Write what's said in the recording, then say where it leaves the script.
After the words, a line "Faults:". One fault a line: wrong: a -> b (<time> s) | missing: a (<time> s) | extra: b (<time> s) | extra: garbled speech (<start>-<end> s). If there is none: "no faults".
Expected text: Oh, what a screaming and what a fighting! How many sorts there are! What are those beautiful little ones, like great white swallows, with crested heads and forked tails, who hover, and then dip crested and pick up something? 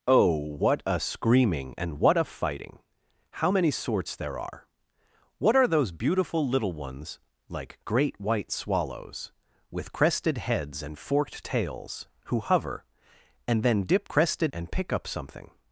Oh, what a screaming and what a fighting! How many sorts there are! What are those beautiful little ones, like great white swallows, with crested heads and forked tails, who hover, and then dip crested and pick up something?
Faults:
no faults